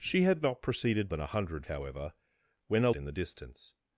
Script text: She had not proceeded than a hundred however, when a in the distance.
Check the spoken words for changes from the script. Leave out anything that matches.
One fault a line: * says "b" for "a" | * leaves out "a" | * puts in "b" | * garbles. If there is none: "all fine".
all fine